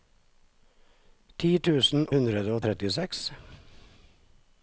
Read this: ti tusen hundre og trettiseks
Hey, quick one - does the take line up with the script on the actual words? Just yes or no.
yes